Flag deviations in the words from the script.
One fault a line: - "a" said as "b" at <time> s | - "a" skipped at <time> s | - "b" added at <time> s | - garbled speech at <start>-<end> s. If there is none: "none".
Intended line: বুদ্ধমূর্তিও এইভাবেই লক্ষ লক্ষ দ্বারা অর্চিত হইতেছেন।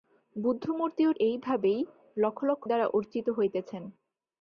none